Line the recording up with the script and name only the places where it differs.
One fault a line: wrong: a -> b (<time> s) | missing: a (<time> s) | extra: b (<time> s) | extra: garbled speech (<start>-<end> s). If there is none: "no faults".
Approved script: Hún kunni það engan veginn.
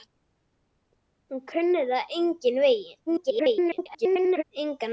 extra: garbled speech (3.1-4.4 s)